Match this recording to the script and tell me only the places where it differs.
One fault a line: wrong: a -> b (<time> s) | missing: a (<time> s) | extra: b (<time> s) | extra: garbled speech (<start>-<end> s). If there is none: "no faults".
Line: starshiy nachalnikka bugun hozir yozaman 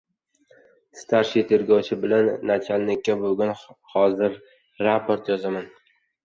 extra: tergovchi bilan (1.5 s)
extra: raport (4.9 s)